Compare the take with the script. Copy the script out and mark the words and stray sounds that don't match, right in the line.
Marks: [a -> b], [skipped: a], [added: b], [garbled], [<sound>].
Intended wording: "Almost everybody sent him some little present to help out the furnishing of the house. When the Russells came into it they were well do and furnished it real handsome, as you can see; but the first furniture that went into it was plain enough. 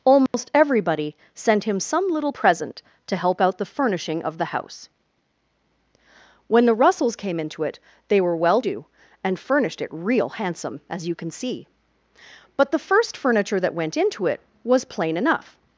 "Almost [dropout] everybody sent him some little present to help out the furnishing of the house. When the Russells came into it they were well do and furnished it real handsome, as you can see; but the first furniture that went into it was plain enough.